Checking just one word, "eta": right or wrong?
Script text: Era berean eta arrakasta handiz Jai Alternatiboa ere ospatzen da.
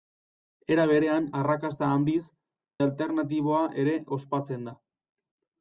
wrong